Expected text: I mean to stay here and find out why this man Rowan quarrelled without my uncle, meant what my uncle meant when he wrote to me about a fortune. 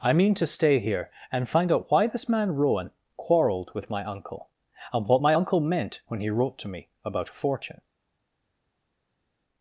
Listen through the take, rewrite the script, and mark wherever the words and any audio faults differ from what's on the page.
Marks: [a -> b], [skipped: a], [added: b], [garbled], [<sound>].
I mean to stay here and find out why this man Rowan quarrelled [without -> with] my uncle, [meant -> and] what my uncle meant when he wrote to me about a fortune.